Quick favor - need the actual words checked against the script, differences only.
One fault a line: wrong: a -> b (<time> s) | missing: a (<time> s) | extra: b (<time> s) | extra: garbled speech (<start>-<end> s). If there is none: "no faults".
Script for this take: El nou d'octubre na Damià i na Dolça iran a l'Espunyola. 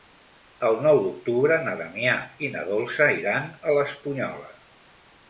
no faults